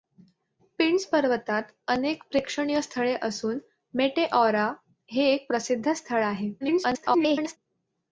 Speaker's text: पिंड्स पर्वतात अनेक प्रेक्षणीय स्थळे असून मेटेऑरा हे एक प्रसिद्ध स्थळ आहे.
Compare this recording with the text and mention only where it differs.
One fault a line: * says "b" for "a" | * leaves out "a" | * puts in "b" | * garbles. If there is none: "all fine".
* garbles